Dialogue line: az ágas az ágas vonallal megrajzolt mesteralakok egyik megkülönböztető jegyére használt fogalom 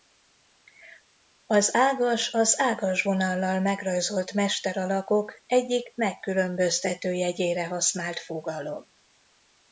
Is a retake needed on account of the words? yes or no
no